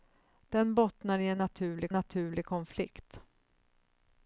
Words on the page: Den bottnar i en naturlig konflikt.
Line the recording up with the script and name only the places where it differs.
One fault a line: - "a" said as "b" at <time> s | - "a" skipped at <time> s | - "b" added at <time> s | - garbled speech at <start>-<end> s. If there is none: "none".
- "naturlig" added at 1.9 s